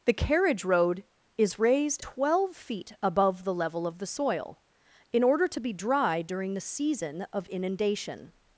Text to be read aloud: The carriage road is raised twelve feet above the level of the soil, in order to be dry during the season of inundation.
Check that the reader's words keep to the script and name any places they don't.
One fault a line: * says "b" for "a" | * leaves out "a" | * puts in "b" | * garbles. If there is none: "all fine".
all fine